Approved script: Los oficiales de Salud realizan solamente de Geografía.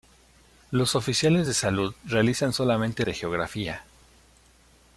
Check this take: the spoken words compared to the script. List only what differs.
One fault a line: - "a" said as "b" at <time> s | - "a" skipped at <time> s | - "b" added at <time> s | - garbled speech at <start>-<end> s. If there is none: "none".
none